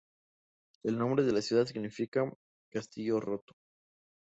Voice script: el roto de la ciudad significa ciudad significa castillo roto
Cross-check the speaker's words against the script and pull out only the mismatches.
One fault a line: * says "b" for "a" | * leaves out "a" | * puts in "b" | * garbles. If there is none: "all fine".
* says "nombre" for "roto"
* leaves out "ciudad significa"